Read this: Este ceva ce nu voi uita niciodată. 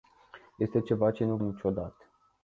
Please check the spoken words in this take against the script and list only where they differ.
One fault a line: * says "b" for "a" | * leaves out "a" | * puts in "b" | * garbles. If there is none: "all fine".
* leaves out "voi uita"